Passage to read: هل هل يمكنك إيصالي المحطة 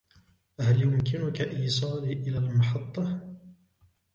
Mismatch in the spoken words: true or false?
true